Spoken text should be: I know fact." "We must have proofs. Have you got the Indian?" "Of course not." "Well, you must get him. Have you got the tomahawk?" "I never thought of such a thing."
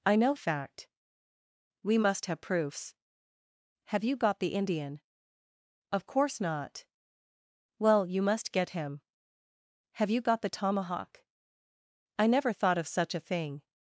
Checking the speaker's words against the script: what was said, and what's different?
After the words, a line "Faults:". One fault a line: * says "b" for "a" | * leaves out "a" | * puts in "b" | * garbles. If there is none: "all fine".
I know fact." "We must have proofs. Have you got the Indian?" "Of course not." "Well, you must get him. Have you got the tomahawk?" "I never thought of such a thing."
Faults:
all fine